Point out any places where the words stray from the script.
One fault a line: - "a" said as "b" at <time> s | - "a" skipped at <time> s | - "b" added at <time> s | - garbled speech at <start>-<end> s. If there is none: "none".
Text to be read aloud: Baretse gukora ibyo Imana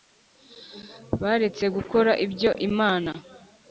none